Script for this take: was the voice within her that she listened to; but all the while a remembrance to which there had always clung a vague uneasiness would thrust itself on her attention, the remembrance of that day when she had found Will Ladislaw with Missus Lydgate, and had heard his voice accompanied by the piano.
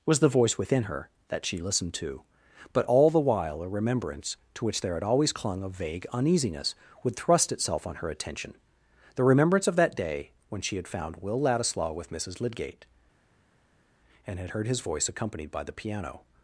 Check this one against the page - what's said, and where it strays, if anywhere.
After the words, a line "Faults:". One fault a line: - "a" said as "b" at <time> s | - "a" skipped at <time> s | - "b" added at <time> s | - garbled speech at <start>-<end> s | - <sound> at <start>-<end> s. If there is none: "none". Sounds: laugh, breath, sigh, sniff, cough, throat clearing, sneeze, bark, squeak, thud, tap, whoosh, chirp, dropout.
was the voice within her that she listened to; but all the while a remembrance to which there had always clung a vague uneasiness would thrust itself on her attention, the remembrance of that day when she had found Will Ladislaw with Missus Lydgate, and had heard his voice accompanied by the piano.
Faults:
none